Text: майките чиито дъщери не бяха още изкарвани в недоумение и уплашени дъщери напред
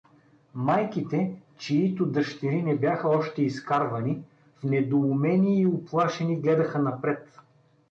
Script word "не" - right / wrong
right